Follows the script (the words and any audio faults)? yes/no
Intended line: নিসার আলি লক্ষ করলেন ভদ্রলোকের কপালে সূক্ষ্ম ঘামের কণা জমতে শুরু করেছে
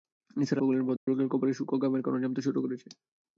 no